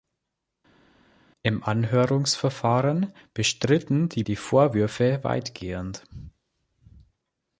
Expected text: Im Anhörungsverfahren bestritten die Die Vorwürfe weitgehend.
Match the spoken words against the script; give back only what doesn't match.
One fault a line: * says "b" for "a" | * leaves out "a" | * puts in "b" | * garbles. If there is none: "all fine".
all fine